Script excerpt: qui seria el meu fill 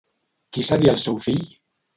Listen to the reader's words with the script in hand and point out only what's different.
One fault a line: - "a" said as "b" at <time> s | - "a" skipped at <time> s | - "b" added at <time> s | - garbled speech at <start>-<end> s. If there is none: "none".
- "meu" said as "seu" at 1.1 s